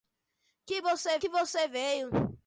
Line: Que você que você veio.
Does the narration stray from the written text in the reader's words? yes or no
no